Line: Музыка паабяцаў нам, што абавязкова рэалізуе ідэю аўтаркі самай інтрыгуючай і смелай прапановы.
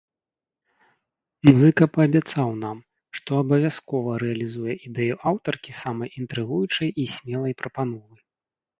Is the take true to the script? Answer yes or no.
yes